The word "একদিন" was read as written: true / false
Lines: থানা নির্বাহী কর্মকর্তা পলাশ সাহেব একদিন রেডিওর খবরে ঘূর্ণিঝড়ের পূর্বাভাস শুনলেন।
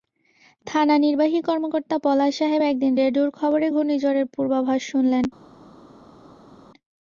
true